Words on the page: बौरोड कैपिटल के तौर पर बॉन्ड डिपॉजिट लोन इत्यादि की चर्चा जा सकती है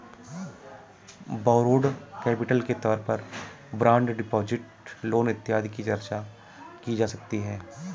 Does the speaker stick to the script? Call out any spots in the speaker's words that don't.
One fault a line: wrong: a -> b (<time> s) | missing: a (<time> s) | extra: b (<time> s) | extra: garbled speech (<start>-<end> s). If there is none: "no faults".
extra: की (6.8 s)